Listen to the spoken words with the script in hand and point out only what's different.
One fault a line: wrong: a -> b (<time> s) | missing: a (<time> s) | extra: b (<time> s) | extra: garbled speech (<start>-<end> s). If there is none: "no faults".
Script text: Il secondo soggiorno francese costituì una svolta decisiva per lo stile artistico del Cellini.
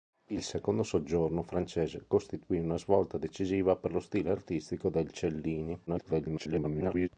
extra: garbled speech (5.9-7.1 s)